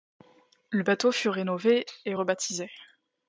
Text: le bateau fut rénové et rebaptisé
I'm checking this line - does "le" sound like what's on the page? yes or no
yes